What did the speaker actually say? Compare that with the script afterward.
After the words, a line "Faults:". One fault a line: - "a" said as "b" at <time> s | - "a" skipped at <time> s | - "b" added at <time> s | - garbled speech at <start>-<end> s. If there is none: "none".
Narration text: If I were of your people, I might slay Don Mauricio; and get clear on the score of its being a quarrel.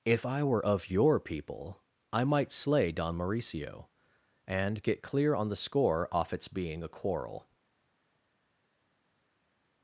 If I were of your people, I might slay Don Mauricio; and get clear on the score off its being a quarrel.
Faults:
- "of" said as "off" at 6.1 s